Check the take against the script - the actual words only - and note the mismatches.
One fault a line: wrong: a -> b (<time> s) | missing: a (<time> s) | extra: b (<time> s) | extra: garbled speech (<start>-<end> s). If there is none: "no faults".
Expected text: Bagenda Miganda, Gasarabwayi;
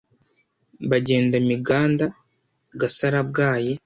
no faults